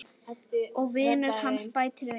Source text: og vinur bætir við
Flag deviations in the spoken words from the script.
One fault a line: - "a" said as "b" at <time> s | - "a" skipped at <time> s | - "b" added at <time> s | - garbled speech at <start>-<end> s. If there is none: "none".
- "hans" added at 1.4 s